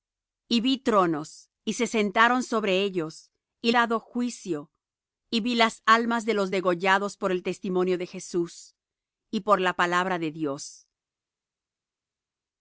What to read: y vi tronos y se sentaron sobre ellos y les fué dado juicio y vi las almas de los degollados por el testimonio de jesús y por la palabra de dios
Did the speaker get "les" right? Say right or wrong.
wrong